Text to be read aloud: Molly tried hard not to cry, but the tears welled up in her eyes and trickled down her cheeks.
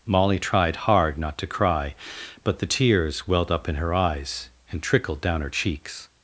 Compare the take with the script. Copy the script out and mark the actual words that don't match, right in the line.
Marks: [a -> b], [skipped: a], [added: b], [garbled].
Molly tried hard not to cry, but the tears welled up in her eyes and trickled down her cheeks.